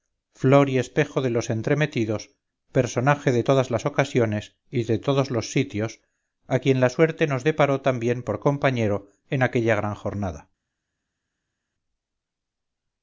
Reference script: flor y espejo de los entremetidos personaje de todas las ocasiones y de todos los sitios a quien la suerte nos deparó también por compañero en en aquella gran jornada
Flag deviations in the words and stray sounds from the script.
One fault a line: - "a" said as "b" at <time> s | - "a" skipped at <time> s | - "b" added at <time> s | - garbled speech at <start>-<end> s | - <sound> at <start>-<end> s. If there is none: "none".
- "en" skipped at 9.4 s